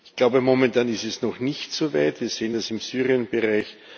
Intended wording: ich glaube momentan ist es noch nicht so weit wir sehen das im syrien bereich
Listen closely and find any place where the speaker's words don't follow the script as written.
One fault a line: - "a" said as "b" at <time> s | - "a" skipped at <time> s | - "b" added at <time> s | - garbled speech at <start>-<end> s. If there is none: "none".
none